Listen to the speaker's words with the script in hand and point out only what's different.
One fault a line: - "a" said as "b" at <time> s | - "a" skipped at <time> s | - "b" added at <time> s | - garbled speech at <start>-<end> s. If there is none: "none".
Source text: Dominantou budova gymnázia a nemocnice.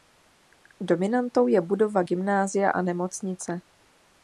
- "je" added at 1.5 s